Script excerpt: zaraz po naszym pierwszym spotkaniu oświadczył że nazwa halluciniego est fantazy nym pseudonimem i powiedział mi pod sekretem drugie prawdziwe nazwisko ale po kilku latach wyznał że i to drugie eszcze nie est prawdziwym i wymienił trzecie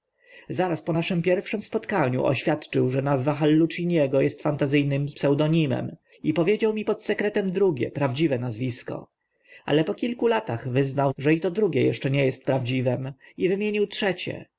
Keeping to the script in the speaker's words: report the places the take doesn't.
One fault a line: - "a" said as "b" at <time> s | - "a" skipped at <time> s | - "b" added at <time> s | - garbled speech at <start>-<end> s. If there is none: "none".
none